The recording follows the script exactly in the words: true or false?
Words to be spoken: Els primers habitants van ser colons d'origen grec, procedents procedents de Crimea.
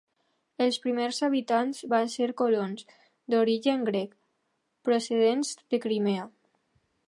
false